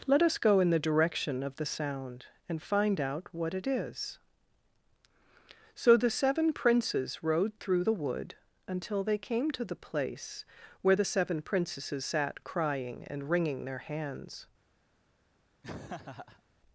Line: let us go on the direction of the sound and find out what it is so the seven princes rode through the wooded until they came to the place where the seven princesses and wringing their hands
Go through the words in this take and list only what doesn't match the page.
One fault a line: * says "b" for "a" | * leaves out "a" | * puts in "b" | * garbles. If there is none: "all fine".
* says "in" for "on"
* says "wood" for "wooded"
* puts in "sat crying"